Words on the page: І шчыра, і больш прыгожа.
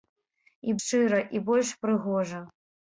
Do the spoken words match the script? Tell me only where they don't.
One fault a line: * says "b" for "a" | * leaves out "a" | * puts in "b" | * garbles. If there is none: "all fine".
all fine